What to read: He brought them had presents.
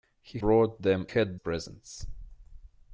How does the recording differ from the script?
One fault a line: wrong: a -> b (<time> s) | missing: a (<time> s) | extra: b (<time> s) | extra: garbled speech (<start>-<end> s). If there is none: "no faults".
no faults